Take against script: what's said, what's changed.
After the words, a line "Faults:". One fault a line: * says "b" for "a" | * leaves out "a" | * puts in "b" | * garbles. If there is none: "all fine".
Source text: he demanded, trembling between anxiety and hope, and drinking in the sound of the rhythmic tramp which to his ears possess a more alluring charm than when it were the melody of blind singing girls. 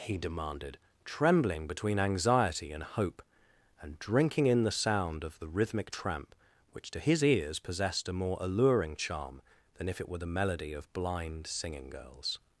he demanded, trembling between anxiety and hope, and drinking in the sound of the rhythmic tramp which to his ears possessed a more alluring charm than if it were the melody of blind singing girls.
Faults:
* says "possessed" for "possess"
* says "if" for "when"